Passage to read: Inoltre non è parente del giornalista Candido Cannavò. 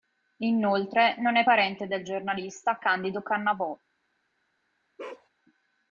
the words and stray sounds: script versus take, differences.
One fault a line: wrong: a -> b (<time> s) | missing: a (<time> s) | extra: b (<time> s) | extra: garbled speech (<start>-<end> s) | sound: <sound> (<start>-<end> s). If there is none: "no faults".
sound: bark (5.0-5.3 s)